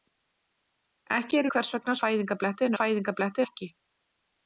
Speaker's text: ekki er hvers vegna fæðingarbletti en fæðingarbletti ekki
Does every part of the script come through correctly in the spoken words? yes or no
yes